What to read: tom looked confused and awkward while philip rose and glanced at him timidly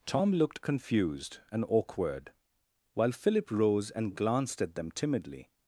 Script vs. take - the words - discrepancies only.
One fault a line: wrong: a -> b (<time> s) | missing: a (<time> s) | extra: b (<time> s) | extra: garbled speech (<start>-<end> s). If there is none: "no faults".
wrong: him -> them (4.7 s)